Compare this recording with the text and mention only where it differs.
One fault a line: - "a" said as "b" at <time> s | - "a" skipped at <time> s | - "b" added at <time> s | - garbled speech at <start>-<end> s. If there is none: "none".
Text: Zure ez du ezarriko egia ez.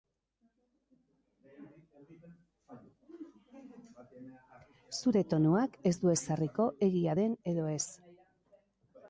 - "tonuak" added at 5.3 s
- "den edo" added at 7.2 s